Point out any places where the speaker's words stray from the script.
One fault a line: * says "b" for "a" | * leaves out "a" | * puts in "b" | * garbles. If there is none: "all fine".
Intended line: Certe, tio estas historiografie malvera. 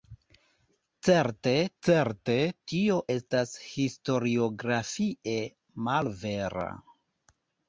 * puts in "certe"